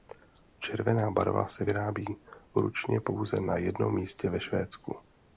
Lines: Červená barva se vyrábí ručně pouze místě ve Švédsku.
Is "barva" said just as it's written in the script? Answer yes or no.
yes